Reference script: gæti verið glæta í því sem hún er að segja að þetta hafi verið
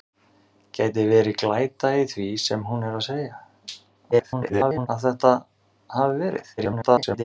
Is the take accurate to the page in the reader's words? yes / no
no